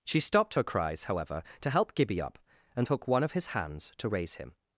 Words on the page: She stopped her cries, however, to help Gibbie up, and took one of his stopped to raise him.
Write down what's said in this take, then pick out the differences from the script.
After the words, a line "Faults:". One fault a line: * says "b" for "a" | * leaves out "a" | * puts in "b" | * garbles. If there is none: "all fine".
She stopped her cries, however, to help Gibbie up, and took one of his hands to raise him.
Faults:
* says "hands" for "stopped"